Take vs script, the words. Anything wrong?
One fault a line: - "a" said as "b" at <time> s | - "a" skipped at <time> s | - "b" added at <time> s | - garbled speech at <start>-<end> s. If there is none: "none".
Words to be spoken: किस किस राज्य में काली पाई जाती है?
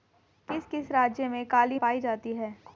none